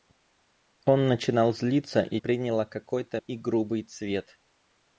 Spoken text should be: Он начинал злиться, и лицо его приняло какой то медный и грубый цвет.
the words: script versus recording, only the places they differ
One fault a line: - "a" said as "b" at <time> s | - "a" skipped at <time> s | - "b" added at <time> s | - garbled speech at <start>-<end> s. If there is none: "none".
- "лицо его" skipped at 2.2 s
- "медный" skipped at 3.2 s